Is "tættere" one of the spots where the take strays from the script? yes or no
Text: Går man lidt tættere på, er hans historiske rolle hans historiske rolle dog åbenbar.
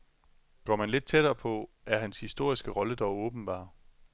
no